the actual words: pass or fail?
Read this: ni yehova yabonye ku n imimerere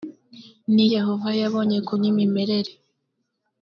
pass